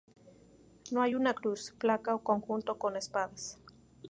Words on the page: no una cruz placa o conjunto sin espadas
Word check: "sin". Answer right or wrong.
wrong